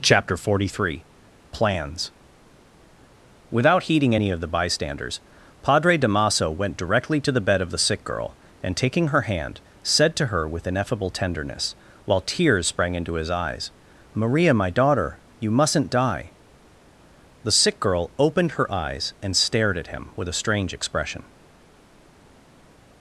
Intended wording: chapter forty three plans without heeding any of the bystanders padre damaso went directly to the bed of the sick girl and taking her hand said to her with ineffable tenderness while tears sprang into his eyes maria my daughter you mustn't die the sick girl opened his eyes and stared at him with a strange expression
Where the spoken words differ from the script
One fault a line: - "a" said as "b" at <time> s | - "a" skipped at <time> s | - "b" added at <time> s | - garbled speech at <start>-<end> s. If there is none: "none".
- "his" said as "her" at 18.5 s